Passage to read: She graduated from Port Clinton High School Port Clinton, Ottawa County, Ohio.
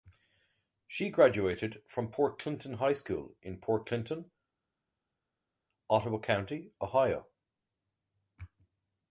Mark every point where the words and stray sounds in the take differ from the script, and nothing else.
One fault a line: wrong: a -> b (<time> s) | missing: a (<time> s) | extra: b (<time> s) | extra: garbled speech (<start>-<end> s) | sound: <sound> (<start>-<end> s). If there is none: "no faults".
extra: in (3.4 s)